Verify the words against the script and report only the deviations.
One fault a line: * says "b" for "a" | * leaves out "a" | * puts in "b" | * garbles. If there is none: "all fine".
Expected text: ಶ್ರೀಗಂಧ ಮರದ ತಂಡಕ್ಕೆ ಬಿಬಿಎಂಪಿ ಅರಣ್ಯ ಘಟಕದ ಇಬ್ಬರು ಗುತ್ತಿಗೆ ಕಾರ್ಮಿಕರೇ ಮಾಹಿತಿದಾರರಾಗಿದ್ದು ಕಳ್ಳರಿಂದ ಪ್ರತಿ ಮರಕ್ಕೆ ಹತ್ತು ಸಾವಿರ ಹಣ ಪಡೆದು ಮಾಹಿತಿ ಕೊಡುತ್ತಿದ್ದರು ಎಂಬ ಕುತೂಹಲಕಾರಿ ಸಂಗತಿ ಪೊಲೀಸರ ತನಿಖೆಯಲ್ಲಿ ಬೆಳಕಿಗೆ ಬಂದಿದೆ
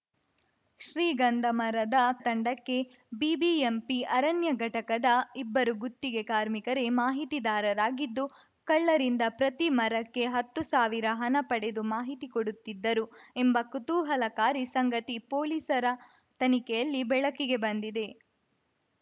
all fine